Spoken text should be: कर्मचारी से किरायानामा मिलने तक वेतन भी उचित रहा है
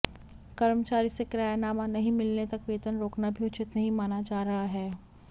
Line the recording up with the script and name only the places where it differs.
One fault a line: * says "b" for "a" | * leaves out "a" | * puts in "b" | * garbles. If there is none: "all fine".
* puts in "नहीं"
* puts in "रोकना"
* puts in "नहीं माना जा"